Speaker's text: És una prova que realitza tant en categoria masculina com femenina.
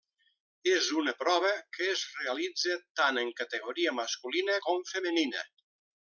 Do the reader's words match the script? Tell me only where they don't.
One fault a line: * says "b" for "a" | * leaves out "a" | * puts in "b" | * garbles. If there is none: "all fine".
* puts in "es"